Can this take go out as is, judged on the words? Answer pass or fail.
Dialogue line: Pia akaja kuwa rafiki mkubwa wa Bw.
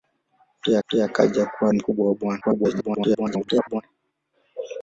fail